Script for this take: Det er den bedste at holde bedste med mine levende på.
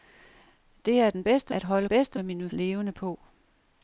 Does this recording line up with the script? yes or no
yes